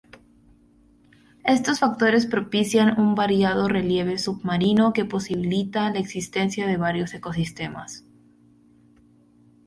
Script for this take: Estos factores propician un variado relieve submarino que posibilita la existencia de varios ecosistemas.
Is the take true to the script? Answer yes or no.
yes